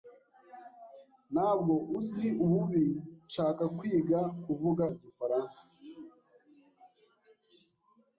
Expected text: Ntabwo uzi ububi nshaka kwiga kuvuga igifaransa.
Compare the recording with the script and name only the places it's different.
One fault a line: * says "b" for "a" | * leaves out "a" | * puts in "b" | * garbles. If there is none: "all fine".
all fine